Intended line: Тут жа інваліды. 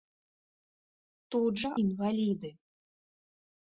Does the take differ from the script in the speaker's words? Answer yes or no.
no